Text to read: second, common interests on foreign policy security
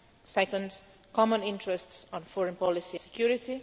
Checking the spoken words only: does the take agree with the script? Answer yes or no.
yes